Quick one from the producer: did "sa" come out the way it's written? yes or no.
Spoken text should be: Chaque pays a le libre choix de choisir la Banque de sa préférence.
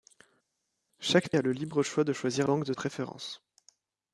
no